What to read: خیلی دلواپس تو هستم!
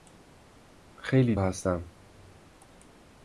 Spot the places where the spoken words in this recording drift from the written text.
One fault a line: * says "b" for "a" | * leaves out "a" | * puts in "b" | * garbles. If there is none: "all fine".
* leaves out "دلواپس تو"